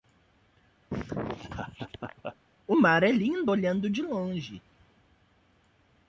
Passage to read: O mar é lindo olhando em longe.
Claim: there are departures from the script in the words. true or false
true